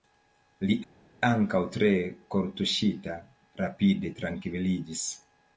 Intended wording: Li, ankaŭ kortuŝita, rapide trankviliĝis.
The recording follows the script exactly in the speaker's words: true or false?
false